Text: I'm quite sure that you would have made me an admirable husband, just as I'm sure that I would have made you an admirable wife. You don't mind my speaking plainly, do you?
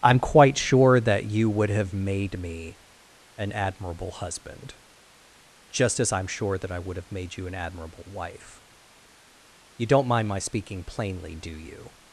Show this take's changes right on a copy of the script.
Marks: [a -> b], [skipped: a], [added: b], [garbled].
I'm quite sure that you would have made me an admirable husband, just as I'm sure that I would have made you an admirable wife. You don't mind my speaking plainly, do you?